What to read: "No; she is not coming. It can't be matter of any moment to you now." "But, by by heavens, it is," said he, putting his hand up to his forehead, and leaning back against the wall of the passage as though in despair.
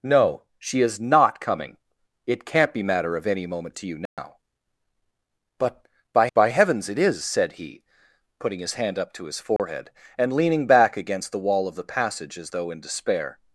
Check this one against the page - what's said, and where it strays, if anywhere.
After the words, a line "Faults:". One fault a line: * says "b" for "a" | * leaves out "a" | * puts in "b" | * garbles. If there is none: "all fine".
"No; she is not coming. It can't be matter of any moment to you now." "But, by by heavens, it is," said he, putting his hand up to his forehead, and leaning back against the wall of the passage as though in despair.
Faults:
all fine